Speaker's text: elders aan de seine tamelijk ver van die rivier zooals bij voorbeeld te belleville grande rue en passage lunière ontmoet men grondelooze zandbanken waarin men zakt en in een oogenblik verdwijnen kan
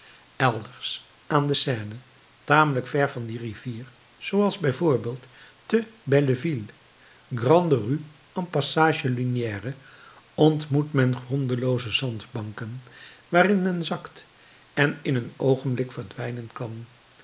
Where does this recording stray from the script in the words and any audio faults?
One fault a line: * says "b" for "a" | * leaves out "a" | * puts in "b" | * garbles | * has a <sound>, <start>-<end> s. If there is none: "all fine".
all fine